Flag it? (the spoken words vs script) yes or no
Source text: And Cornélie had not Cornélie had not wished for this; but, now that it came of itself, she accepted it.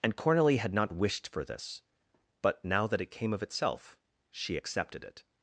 yes